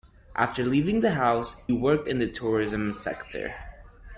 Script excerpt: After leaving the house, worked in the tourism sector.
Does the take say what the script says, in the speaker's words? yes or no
yes